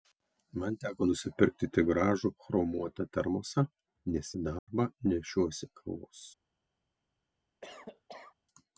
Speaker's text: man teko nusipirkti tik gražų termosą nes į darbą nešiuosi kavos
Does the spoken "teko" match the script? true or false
true